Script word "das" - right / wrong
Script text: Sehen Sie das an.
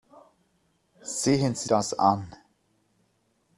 right